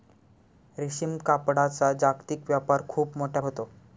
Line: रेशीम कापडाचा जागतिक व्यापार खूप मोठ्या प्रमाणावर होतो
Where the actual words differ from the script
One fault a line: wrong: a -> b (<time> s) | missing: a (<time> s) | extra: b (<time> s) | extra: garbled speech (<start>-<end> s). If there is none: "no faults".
missing: प्रमाणावर (3.4 s)